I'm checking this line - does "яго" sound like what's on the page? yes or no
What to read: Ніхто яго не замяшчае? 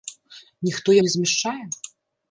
no